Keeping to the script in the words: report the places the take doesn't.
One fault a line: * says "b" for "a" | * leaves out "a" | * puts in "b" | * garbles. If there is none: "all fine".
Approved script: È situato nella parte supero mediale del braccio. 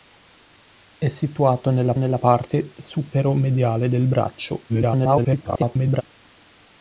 * puts in "nella"
* garbles